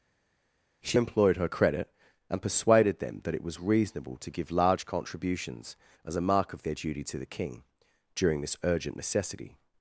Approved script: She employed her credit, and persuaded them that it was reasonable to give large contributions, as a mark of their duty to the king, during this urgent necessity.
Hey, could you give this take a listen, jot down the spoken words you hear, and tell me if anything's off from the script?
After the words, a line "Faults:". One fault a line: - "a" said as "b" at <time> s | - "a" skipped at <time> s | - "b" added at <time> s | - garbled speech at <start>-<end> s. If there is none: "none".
She employed her credit, and persuaded them that it was reasonable to give large contributions, as a mark of their duty to the king, during this urgent necessity.
Faults:
none